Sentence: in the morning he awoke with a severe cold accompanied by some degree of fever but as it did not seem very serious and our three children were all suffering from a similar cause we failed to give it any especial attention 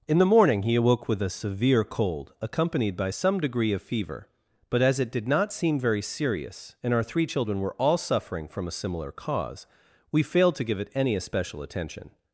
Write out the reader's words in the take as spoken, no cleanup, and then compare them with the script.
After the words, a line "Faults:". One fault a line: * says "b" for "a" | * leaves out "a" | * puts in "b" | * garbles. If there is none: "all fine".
in the morning he awoke with a severe cold accompanied by some degree of fever but as it did not seem very serious and our three children were all suffering from a similar cause we failed to give it any especial attention
Faults:
all fine